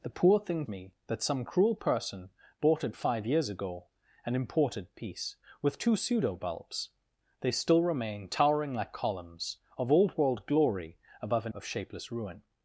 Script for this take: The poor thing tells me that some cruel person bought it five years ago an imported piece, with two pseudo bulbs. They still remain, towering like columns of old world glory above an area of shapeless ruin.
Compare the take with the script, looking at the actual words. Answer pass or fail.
fail